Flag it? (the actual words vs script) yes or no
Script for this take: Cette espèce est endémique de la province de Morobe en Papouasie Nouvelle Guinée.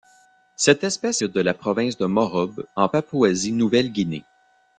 yes